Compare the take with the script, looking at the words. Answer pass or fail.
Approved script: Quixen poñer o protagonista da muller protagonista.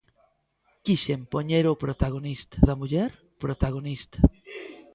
pass